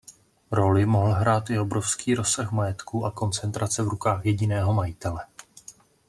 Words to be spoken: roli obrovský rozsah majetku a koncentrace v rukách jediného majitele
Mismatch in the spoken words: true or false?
true